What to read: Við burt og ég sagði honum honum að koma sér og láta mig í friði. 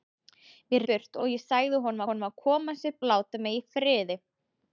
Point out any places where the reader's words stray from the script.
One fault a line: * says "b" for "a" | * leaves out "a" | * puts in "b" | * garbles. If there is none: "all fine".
all fine